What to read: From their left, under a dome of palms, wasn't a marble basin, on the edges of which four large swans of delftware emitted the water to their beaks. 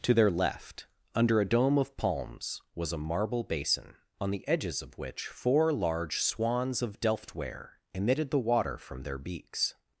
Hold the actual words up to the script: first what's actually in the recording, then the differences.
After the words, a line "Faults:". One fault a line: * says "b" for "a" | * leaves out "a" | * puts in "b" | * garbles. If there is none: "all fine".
To their left, under a dome of palms, was a marble basin, on the edges of which four large swans of delftware emitted the water from their beaks.
Faults:
* says "To" for "From"
* says "was" for "wasn't"
* says "from" for "to"